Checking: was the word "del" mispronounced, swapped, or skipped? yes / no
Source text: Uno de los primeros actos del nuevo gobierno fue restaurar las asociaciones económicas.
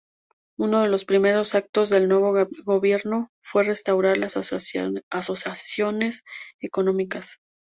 no